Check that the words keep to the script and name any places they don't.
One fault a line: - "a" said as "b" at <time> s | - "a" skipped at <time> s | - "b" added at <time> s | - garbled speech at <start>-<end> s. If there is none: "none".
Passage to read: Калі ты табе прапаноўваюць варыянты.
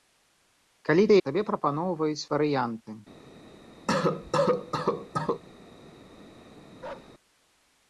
none